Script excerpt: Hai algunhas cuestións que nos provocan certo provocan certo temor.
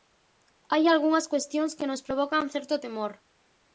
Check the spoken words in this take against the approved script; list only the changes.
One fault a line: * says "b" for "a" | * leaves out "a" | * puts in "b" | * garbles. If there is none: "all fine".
* leaves out "provocan certo"